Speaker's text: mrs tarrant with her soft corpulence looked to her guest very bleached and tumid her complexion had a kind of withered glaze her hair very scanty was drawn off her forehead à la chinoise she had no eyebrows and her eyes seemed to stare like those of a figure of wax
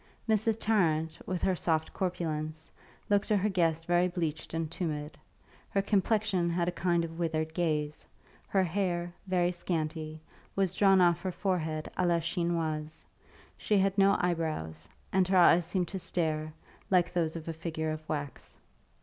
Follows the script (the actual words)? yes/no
yes